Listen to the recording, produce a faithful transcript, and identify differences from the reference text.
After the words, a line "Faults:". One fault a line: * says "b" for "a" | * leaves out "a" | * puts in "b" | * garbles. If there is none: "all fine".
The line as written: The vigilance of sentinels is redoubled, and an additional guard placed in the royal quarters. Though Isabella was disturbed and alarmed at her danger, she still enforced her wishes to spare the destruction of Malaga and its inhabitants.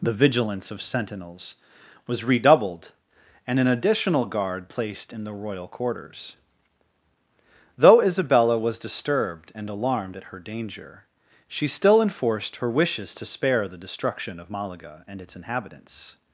The vigilance of sentinels was redoubled, and an additional guard placed in the royal quarters. Though Isabella was disturbed and alarmed at her danger, she still enforced her wishes to spare the destruction of Malaga and its inhabitants.
Faults:
* says "was" for "is"